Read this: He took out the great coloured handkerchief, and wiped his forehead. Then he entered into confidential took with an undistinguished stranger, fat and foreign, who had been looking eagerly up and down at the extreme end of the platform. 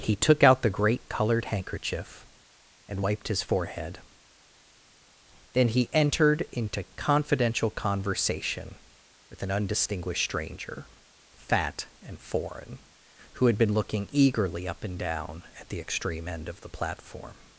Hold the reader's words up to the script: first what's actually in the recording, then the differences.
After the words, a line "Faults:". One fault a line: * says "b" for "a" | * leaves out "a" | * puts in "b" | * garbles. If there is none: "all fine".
He took out the great coloured handkerchief, and wiped his forehead. Then he entered into confidential conversation with an undistinguished stranger, fat and foreign, who had been looking eagerly up and down at the extreme end of the platform.
Faults:
* says "conversation" for "took"